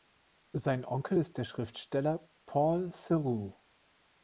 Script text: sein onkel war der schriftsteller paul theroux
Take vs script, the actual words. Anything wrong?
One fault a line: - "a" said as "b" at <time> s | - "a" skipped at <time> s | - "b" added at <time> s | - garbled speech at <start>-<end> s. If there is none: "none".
- "war" said as "ist" at 1.2 s